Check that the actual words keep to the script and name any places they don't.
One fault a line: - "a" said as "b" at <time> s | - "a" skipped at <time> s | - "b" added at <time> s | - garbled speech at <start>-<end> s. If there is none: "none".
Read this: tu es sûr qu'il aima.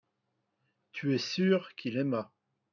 none